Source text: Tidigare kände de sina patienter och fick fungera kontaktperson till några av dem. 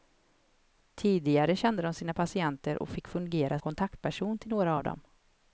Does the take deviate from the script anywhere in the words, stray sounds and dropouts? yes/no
no